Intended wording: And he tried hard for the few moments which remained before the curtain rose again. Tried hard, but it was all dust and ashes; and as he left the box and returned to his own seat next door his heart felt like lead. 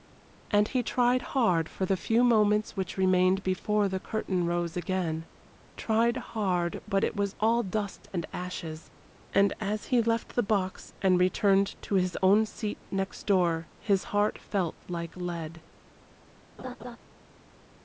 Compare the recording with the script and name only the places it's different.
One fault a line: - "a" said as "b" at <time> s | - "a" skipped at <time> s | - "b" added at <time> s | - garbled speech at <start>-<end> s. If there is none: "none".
none